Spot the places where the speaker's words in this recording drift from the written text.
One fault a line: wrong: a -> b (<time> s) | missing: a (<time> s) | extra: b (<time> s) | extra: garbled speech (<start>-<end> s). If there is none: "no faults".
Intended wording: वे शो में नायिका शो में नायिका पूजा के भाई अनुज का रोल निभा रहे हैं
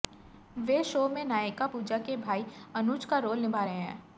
missing: शो में नायिका (1.7 s)